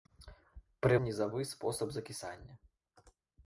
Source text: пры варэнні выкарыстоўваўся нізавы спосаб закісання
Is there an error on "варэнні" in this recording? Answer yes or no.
yes